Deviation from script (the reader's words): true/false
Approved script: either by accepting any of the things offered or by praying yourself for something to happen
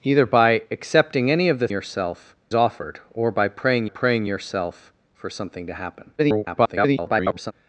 true